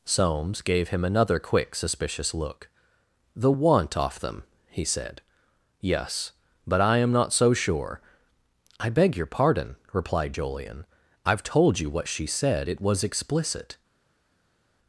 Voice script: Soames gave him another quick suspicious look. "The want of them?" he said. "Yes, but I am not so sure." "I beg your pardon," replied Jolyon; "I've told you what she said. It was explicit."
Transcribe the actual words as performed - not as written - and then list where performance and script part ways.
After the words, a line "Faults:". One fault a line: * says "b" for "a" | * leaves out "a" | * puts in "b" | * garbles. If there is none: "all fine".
Soames gave him another quick suspicious look. "The want off them?" he said. "Yes, but I am not so sure." "I beg your pardon," replied Jolyon; "I've told you what she said. It was explicit."
Faults:
* says "off" for "of"